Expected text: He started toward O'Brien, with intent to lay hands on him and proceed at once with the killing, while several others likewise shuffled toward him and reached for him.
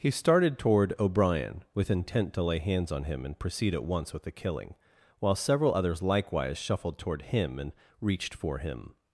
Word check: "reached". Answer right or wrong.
right